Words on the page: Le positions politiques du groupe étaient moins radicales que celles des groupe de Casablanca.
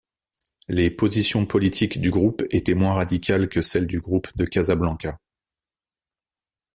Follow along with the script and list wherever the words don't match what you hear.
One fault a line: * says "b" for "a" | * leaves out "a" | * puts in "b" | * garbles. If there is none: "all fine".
* says "Les" for "Le"
* says "du" for "des"